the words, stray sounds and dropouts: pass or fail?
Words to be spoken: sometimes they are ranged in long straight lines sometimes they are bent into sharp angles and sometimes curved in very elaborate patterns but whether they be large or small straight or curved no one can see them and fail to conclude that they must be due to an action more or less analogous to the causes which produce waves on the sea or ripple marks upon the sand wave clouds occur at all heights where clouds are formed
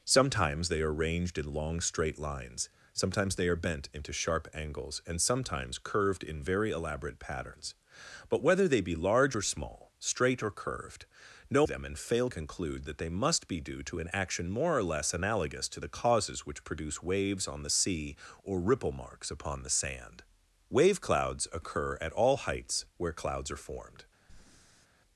fail